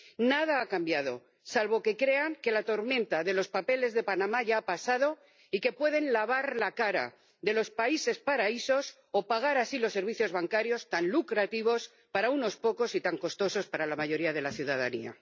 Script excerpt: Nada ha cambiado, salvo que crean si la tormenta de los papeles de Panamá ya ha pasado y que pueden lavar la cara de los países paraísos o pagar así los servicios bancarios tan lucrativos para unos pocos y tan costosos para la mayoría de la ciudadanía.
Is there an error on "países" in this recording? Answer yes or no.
no